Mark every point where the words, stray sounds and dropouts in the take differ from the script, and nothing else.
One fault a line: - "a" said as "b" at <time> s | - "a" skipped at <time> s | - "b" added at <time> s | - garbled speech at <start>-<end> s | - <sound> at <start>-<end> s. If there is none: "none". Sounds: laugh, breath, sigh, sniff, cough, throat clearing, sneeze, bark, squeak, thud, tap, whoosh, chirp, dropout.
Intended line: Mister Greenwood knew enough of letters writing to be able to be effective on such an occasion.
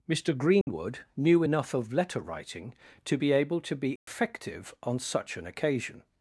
- dropout at 0.6-0.7 s
- "letters" said as "letter" at 1.9 s
- dropout at 4.0-4.1 s